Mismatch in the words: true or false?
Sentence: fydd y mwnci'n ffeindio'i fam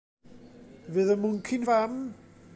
true